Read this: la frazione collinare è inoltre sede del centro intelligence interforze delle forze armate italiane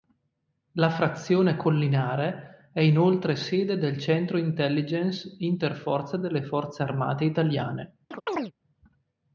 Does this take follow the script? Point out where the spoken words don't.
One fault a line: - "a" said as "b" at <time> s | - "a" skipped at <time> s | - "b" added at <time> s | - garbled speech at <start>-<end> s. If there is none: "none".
none